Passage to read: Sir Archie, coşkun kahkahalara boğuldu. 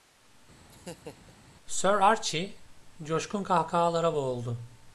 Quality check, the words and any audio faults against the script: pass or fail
fail